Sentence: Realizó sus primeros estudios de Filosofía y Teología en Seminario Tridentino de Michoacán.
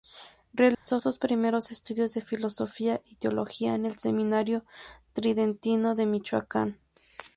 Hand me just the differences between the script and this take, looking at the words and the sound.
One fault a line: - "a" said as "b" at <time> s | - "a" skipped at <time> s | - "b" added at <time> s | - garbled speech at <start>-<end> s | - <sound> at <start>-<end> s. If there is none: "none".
- dropout at 0.7-0.9 s
- "el" added at 3.8 s